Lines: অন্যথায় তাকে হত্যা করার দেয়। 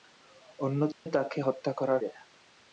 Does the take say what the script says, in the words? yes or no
yes